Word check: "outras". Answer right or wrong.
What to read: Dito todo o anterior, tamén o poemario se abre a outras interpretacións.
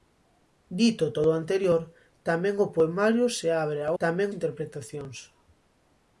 wrong